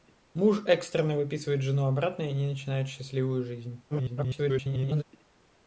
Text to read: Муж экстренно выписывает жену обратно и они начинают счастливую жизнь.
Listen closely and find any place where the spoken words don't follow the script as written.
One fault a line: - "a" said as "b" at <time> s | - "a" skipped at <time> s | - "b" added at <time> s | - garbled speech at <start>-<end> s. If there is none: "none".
- garbled speech at 3.9-5.0 s